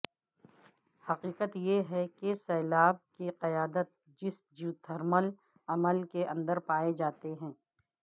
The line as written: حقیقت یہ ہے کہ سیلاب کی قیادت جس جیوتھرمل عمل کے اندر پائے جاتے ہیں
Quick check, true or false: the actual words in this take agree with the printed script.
true